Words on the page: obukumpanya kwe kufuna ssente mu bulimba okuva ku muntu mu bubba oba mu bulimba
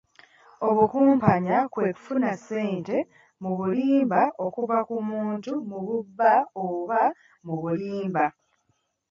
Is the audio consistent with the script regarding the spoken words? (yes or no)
yes